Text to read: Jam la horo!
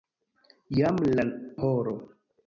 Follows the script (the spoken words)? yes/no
yes